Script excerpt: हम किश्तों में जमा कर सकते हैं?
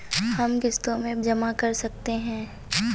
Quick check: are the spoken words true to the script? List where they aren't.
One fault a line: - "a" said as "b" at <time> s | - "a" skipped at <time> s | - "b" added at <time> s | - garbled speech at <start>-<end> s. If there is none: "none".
none